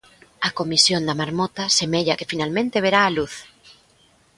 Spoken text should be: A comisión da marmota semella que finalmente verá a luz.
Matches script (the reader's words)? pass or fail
pass